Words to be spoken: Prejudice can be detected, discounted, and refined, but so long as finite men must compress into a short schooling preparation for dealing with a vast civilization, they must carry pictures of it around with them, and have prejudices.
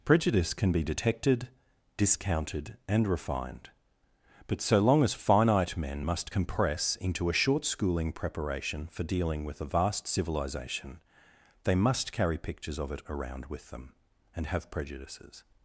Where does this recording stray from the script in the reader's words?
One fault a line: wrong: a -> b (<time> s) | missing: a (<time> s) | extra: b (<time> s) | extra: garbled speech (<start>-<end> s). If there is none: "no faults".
no faults